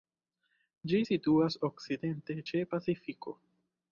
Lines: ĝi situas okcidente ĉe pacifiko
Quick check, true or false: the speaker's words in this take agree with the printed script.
true